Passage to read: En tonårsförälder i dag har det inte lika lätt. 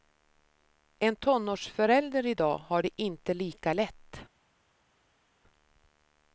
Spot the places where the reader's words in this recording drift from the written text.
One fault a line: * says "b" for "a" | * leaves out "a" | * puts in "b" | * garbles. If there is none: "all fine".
all fine